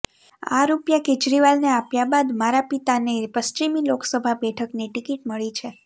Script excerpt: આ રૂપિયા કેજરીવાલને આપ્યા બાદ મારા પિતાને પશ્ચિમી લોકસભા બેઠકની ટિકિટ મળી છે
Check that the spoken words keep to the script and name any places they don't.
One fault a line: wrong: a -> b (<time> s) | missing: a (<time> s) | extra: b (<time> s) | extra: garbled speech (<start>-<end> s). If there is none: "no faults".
no faults